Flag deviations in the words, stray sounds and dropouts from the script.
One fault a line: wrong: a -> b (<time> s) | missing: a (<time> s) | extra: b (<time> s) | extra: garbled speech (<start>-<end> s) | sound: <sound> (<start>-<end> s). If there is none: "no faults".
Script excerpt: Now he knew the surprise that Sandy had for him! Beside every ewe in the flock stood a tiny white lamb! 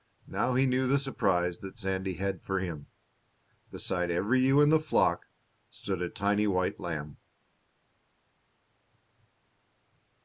no faults